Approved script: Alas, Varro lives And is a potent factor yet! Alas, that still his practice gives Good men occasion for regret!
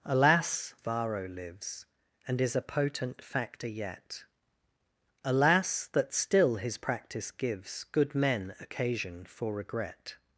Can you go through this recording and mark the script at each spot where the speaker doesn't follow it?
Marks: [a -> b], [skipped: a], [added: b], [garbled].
Alas, Varro lives And is a potent factor yet! Alas, that still his practice gives Good men occasion for regret!